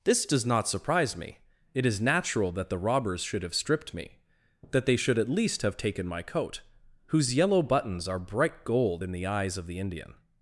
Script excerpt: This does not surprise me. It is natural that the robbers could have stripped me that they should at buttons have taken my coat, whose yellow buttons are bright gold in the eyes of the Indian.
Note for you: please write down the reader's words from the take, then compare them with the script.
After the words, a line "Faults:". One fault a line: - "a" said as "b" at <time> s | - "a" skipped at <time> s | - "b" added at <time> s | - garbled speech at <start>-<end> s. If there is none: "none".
This does not surprise me. It is natural that the robbers should have stripped me that they should at least have taken my coat, whose yellow buttons are bright gold in the eyes of the Indian.
Faults:
- "could" said as "should" at 3.2 s
- "buttons" said as "least" at 5.3 s